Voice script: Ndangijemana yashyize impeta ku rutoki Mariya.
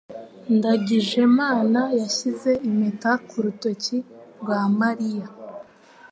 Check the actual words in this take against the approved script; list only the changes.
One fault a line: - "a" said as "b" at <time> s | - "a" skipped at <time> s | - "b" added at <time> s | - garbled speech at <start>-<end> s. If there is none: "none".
- "rwa" added at 4.4 s